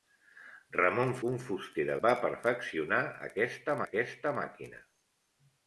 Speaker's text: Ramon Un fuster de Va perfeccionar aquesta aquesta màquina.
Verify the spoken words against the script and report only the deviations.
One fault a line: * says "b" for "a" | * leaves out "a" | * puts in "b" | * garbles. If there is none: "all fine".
all fine